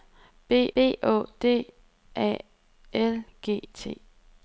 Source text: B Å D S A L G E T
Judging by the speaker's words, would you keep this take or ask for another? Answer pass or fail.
fail